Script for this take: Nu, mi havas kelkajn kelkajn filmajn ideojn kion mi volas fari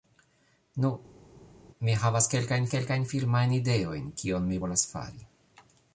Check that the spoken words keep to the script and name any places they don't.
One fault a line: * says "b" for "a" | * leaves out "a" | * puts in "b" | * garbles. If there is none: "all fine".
all fine